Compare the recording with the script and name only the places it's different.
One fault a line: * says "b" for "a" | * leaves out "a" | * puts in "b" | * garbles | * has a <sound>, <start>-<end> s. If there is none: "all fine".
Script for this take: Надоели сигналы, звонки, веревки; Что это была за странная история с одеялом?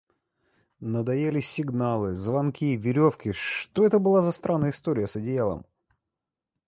all fine